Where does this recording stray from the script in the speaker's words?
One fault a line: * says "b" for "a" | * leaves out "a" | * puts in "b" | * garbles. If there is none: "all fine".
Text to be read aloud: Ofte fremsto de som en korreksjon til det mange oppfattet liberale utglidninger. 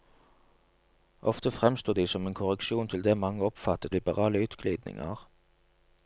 all fine